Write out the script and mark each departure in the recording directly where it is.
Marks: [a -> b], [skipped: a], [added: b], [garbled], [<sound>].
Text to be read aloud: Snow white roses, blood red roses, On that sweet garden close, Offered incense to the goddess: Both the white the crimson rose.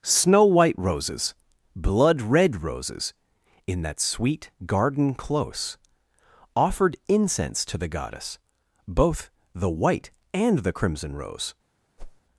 Snow white roses, blood red roses, [On -> In] that sweet garden close, Offered incense to the goddess: Both the white [added: and] the crimson rose. [whoosh]